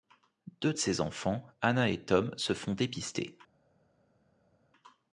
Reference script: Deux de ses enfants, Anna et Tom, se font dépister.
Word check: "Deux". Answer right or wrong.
right